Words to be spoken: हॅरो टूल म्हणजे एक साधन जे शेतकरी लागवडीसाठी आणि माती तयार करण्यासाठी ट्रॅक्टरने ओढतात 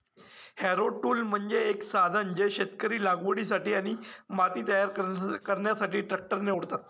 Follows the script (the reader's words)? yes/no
yes